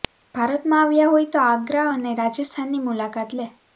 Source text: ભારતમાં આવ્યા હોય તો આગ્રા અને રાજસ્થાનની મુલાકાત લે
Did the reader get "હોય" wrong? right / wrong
right